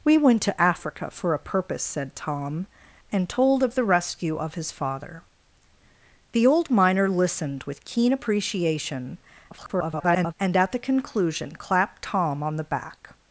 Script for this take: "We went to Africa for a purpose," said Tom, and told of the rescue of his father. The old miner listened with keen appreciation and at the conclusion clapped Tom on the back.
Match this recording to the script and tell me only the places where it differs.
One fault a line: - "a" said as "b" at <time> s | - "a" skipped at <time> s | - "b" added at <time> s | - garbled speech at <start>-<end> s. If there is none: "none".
- garbled speech at 9.5-10.3 s